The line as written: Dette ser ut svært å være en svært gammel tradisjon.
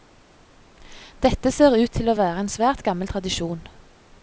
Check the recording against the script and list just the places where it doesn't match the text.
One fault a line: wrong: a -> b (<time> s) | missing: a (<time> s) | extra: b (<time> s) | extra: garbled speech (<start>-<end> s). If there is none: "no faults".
wrong: svært -> til (2.0 s)